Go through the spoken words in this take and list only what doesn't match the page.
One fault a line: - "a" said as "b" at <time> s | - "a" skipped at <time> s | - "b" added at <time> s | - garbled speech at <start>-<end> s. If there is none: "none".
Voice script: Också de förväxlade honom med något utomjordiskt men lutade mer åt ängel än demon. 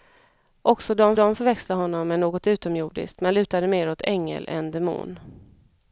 - "de" added at 1.1 s